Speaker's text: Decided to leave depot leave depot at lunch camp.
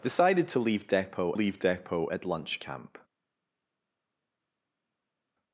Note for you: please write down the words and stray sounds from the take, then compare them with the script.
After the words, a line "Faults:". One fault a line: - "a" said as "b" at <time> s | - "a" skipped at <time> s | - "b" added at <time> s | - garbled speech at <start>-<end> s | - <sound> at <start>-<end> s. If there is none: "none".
Decided to leave depot leave depot at lunch camp.
Faults:
none